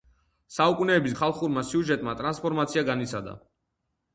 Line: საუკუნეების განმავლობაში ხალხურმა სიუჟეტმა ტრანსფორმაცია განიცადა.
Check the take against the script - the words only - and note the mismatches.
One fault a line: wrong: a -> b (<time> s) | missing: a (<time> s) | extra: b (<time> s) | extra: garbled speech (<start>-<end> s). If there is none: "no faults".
missing: განმავლობაში (1.1 s)